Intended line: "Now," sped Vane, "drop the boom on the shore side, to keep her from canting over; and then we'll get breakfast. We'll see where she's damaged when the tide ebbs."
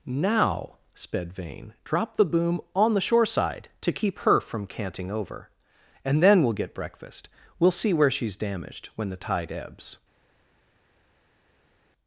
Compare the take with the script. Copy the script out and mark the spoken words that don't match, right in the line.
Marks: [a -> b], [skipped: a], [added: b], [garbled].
"Now," sped Vane, "drop the boom on the shore side, to keep her from canting over; and then we'll get breakfast. We'll see where she's damaged when the tide ebbs."